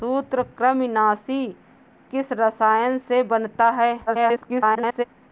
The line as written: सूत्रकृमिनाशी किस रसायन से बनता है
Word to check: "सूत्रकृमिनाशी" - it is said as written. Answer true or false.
true